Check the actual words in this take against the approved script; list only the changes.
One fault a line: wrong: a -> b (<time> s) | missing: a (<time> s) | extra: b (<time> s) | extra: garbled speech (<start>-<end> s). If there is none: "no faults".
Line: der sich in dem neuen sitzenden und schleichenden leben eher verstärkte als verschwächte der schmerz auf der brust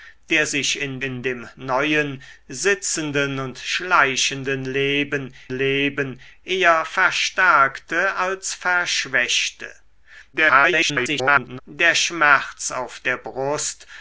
extra: in (1.0 s)
extra: leben (5.5 s)
extra: garbled speech (10.3-11.6 s)